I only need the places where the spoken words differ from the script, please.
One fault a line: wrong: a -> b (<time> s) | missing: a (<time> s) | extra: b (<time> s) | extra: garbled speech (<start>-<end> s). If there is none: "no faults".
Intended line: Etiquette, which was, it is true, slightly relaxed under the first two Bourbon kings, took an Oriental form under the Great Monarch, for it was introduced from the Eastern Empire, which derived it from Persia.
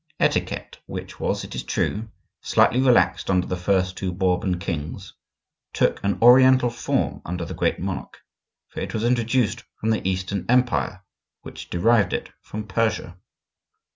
no faults